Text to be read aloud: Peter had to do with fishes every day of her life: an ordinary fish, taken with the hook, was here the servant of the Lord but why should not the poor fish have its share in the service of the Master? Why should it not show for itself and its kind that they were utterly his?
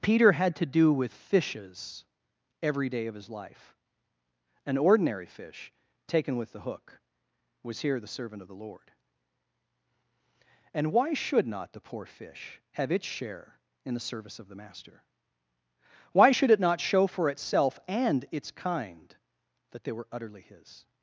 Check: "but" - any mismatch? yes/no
yes